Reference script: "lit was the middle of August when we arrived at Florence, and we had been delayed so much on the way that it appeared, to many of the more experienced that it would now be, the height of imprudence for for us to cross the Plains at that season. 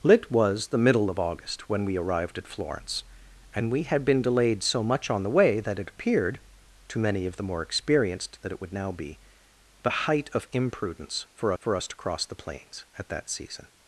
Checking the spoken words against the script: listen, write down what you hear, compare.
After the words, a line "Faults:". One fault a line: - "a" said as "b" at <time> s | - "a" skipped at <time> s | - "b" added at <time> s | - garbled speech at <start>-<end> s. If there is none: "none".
"lit was the middle of August when we arrived at Florence, and we had been delayed so much on the way that it appeared, to many of the more experienced that it would now be, the height of imprudence for for us to cross the Plains at that season.
Faults:
none